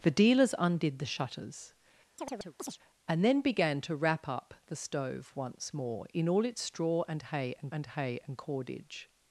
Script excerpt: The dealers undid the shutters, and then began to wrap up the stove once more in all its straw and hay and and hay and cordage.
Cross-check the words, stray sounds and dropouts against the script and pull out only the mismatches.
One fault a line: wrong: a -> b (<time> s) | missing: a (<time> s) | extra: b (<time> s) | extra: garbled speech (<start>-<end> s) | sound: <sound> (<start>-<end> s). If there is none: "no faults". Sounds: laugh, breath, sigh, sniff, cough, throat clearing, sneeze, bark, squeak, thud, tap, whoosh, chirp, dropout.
sound: chirp (2.2-2.8 s)